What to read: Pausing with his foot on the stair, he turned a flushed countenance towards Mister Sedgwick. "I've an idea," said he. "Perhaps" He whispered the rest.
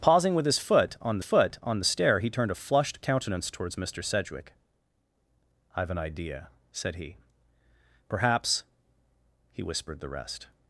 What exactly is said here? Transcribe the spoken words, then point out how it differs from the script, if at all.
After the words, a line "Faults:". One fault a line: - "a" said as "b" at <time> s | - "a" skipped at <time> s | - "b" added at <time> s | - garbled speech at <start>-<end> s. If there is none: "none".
Pausing with his foot on foot on the stair, he turned a flushed countenance towards Mister Sedgwick. "I've an idea," said he. "Perhaps" He whispered the rest.
Faults:
- "foot on" added at 1.2 s